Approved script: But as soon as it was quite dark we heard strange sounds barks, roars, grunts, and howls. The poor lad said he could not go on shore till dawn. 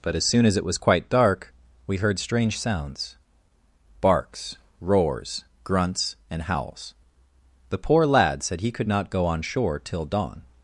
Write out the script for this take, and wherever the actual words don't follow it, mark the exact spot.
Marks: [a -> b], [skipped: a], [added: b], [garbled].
But as soon as it was quite dark we heard strange sounds barks, roars, grunts, and howls. The poor lad said he could not go on shore till dawn.